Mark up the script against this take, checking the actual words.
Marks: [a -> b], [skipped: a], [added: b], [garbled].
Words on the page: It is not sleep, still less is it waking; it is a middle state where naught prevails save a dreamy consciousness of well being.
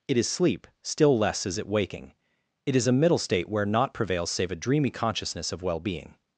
It is [skipped: not] sleep, still less is it waking; it is a middle state where naught prevails save a dreamy consciousness of well being.